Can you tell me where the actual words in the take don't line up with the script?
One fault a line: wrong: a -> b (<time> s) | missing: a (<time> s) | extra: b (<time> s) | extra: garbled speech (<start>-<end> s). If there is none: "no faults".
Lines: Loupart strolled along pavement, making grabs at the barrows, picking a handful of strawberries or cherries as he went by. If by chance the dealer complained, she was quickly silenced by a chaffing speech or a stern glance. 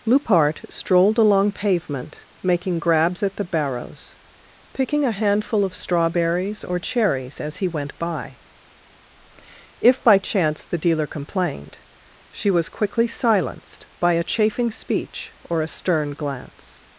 no faults